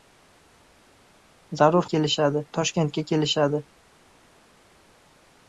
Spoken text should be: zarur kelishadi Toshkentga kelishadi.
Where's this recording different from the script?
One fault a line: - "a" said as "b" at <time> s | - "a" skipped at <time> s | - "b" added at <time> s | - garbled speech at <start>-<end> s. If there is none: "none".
none